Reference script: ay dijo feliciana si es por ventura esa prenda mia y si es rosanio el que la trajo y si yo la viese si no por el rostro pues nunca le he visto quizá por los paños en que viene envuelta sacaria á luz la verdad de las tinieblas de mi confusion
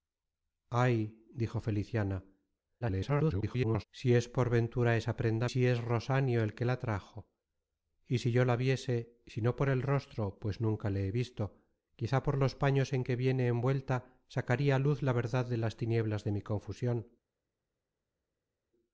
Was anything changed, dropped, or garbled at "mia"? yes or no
yes